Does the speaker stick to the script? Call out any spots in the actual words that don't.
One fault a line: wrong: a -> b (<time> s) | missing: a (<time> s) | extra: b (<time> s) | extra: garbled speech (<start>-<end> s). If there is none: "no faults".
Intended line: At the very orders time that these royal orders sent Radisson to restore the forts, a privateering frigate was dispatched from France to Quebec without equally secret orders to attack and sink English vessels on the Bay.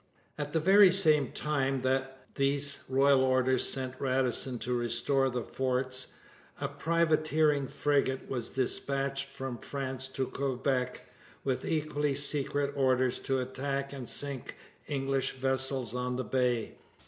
wrong: orders -> same (0.9 s)
wrong: without -> with (11.4 s)